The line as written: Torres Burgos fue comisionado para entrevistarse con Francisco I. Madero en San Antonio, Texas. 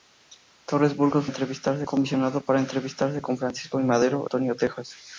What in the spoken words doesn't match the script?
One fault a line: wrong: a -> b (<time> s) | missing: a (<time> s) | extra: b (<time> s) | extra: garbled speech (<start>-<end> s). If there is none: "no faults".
wrong: fue -> entrevistarse (1.2 s)
missing: en San (4.3 s)